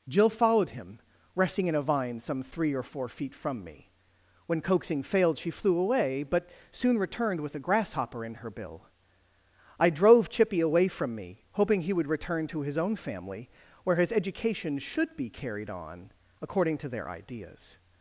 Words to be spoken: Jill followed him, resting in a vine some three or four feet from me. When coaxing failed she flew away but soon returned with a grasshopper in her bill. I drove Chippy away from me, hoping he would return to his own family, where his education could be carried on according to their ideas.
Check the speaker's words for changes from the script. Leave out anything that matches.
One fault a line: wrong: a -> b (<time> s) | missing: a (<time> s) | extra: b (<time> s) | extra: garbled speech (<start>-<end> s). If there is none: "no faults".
wrong: could -> should (14.8 s)